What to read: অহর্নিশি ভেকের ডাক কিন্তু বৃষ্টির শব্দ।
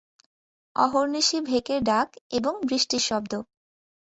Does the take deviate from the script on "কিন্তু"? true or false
true